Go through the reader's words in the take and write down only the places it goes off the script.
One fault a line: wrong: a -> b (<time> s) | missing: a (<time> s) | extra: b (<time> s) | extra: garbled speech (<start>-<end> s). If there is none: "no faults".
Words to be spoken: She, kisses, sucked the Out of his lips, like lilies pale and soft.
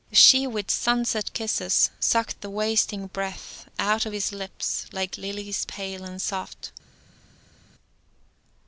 extra: with sunset (0.5 s)
extra: wasting breath (2.5 s)